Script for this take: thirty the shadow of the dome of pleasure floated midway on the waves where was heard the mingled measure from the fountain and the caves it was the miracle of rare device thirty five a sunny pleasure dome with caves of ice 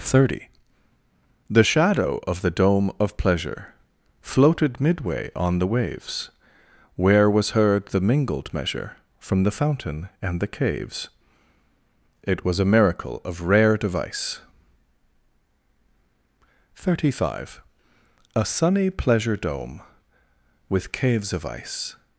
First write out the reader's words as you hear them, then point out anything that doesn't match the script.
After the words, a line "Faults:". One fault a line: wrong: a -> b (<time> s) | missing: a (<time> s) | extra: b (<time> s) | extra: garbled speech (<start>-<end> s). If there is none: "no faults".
thirty the shadow of the dome of pleasure floated midway on the waves where was heard the mingled measure from the fountain and the caves it was a miracle of rare device thirty five a sunny pleasure dome with caves of ice
Faults:
wrong: the -> a (12.6 s)